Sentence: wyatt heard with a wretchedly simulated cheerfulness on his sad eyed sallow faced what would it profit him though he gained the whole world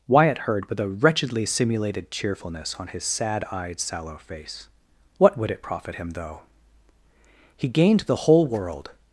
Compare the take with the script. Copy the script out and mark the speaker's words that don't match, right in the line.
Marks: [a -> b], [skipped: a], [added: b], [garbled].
wyatt heard with a wretchedly simulated cheerfulness on his sad eyed sallow [faced -> face] what would it profit him though he gained the whole world